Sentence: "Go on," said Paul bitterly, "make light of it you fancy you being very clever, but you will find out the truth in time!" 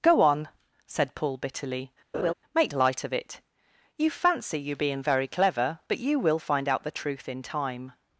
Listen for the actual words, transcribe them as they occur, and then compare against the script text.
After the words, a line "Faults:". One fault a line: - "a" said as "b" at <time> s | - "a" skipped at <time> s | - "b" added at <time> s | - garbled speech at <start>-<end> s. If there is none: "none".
"Go on," said Paul bitterly, "make light of it you fancy you being very clever, but you will find out the truth in time!"
Faults:
none